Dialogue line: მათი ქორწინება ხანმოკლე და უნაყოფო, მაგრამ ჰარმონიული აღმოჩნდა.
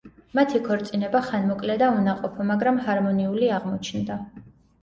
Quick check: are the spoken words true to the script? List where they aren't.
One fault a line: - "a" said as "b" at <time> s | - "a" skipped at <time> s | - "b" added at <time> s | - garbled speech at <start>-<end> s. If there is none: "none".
none